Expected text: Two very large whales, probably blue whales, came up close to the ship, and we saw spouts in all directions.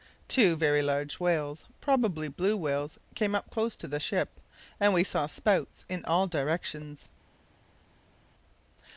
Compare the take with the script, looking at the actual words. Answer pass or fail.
pass